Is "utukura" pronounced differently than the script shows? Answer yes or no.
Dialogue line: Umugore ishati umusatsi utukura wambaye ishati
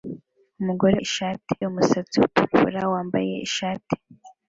no